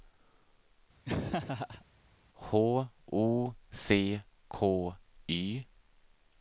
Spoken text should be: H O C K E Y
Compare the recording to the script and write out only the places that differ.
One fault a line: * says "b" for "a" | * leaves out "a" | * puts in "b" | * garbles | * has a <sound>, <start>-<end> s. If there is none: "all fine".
* has a laugh, 1.0-1.8 s
* leaves out "E"